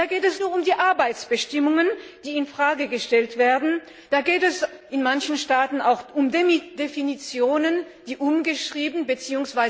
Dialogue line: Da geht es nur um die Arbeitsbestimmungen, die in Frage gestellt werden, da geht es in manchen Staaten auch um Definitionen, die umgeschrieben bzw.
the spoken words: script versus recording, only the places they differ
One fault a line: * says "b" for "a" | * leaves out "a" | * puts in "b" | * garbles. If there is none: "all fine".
all fine